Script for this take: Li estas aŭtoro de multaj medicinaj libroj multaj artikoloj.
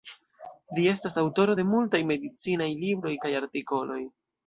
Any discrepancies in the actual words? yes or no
yes